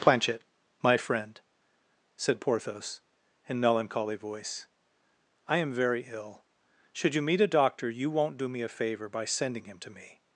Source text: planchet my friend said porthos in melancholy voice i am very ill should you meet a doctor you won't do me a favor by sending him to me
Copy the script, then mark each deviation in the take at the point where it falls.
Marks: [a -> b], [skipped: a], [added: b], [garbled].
planchet my friend said porthos in melancholy voice i am very ill should you meet a doctor you won't do me a favor by sending him to me